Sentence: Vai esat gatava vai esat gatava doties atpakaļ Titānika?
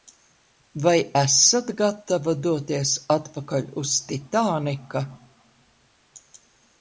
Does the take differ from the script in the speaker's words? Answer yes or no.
yes